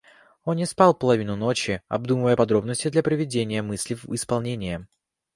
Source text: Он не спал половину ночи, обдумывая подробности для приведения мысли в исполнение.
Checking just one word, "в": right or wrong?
right